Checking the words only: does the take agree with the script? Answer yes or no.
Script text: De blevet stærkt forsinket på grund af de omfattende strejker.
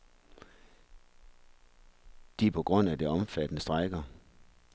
no